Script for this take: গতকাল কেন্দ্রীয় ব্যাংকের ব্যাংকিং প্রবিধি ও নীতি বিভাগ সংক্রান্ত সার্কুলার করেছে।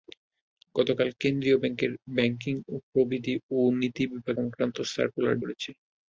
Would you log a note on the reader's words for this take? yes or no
no